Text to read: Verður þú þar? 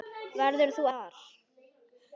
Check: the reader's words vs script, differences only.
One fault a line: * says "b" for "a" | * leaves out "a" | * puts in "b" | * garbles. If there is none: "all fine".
all fine